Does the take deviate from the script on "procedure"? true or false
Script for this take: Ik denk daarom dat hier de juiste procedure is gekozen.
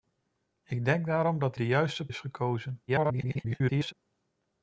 true